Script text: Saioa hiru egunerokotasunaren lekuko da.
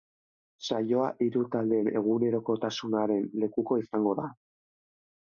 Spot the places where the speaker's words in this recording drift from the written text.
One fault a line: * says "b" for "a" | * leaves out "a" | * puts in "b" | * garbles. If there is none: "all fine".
* puts in "taldeen"
* puts in "izango"